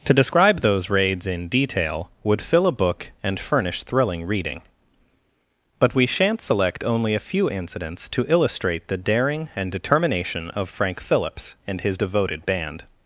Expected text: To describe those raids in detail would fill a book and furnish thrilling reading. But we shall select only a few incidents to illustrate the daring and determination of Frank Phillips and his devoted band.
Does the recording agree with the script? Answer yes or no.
no